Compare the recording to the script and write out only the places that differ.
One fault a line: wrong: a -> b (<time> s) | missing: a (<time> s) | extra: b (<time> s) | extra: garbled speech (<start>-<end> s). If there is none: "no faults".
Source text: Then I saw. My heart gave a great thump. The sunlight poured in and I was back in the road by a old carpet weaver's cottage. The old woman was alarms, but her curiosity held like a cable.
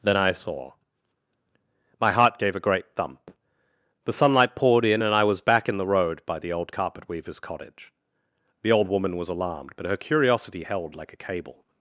wrong: a -> the (6.4 s)
wrong: alarms -> alarmed (9.3 s)